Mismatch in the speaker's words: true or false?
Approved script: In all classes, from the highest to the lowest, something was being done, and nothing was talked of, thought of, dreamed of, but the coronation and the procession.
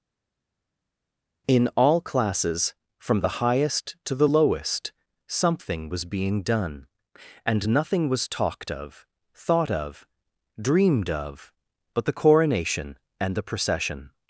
false